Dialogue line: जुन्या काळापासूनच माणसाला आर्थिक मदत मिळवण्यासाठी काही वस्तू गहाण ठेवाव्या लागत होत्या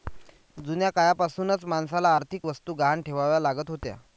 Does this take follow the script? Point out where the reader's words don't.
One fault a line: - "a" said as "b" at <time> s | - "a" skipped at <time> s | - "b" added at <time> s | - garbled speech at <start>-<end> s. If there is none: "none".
- "मदत मिळवण्यासाठी काही" skipped at 2.5 s